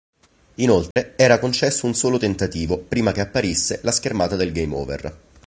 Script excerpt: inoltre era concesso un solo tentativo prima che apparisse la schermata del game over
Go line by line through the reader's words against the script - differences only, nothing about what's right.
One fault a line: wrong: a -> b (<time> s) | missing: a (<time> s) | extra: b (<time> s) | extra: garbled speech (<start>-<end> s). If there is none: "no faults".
no faults